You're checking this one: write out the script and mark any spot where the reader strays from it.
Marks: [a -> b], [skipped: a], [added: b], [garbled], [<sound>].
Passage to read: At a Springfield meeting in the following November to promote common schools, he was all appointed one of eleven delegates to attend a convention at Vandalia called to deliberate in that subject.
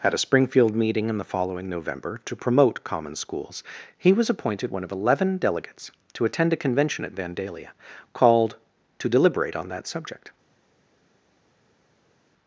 At a Springfield meeting in the following November to promote common schools, he was [skipped: all] appointed one of eleven delegates to attend a convention at Vandalia called to deliberate [in -> on] that subject.